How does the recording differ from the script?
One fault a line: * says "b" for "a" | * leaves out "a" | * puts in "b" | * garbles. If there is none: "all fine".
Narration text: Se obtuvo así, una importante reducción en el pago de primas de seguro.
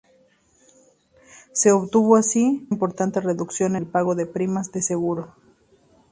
* leaves out "una"
* leaves out "en"